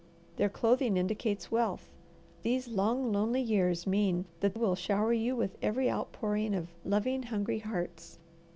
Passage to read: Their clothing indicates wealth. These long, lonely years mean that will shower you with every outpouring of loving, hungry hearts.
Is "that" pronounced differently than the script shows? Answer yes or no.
no